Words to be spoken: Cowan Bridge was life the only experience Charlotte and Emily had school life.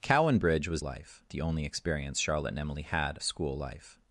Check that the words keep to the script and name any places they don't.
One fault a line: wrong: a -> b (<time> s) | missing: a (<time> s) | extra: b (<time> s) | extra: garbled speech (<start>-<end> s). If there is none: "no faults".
no faults